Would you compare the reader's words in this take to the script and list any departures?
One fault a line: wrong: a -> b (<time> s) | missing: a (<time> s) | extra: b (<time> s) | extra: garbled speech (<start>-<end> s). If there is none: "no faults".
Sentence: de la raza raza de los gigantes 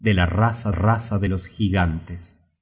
no faults